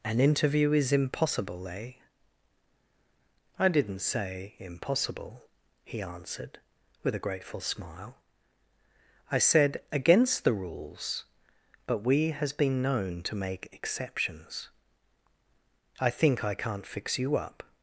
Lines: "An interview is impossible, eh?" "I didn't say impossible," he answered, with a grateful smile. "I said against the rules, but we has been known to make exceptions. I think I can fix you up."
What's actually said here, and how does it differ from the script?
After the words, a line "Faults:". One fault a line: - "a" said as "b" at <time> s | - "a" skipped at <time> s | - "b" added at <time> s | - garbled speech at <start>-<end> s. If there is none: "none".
"An interview is impossible, eh?" "I didn't say impossible," he answered, with a grateful smile. "I said against the rules, but we has been known to make exceptions. I think I can't fix you up."
Faults:
- "can" said as "can't" at 16.5 s